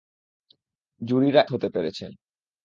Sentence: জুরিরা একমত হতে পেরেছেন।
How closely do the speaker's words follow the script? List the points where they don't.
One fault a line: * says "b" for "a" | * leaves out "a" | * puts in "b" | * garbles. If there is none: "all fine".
* leaves out "একমত"